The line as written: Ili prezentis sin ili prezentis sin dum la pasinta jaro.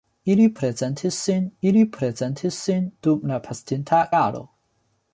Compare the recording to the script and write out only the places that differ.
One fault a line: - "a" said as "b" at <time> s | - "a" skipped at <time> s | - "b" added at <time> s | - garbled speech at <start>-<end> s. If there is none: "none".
none